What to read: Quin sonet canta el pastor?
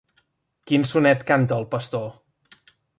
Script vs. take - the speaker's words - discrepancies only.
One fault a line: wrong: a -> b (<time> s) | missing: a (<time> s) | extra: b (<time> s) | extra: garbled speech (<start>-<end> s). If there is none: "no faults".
no faults